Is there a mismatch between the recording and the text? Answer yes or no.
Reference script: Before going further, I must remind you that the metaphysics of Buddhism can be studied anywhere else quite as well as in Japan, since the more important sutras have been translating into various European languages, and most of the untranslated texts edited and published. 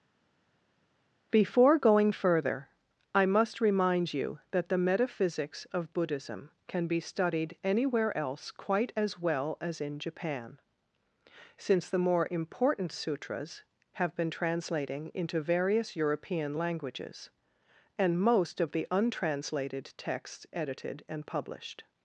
no